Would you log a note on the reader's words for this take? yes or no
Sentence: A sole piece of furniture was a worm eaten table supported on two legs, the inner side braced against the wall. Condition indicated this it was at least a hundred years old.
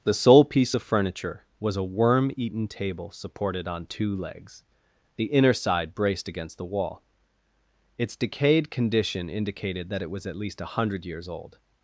yes